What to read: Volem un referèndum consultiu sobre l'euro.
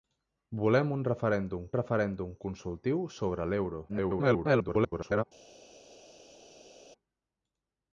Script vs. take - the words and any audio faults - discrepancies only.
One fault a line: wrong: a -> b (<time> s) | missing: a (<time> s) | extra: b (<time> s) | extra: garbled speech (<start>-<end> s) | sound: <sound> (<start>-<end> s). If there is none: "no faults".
extra: referèndum (1.8 s)
extra: garbled speech (3.9-5.2 s)